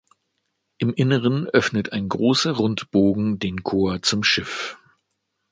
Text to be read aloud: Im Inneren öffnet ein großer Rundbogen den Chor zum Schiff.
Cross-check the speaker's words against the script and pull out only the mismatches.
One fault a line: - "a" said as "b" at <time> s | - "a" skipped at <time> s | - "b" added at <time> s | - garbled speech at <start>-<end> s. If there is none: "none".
none